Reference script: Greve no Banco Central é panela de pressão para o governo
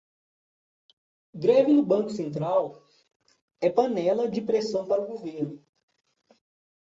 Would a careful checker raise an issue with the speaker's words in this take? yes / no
no